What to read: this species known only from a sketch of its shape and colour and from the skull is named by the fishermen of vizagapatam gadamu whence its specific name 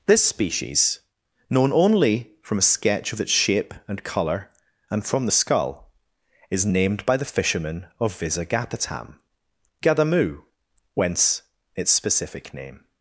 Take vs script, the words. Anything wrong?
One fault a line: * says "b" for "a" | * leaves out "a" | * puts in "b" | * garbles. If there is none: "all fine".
all fine